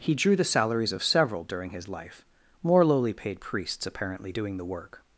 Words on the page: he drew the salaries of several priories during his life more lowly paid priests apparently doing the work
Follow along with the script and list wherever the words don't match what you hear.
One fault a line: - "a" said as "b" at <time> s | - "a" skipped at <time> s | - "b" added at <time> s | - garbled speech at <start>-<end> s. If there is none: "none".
- "priories" skipped at 1.4 s